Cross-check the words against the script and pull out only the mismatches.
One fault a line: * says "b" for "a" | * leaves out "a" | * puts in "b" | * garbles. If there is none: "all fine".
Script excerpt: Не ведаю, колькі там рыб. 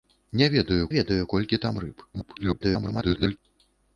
* puts in "ведаю"
* garbles